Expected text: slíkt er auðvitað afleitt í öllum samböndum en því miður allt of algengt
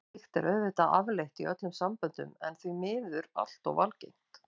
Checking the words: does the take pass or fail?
pass